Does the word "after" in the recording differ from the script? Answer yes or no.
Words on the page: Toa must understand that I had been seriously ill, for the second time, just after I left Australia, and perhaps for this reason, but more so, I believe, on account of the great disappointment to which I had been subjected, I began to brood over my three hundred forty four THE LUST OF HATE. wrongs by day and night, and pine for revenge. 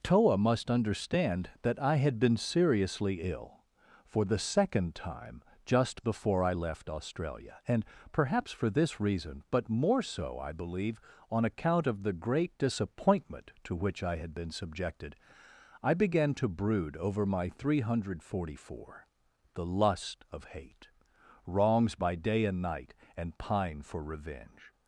yes